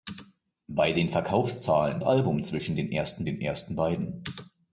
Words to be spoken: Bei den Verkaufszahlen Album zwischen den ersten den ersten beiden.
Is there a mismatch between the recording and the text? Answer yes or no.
no